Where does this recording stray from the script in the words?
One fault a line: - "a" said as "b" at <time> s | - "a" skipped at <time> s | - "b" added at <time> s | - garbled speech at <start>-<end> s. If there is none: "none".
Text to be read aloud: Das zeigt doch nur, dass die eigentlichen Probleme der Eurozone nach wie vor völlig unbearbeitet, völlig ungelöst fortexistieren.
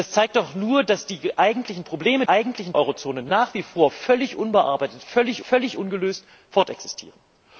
- "der" said as "eigentlichen" at 2.3 s
- "völlig" added at 5.4 s